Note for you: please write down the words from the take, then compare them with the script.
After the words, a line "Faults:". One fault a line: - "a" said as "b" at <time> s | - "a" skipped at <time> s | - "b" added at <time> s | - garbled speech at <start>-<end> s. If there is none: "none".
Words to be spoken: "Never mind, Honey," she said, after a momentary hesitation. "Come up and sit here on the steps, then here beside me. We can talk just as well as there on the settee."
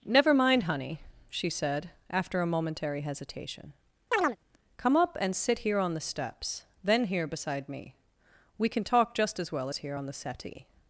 "Never mind, Honey," she said, after a momentary hesitation. "Come up and sit here on the steps, then here beside me. We can talk just as well as here on the settee."
Faults:
- "there" said as "here" at 9.8 s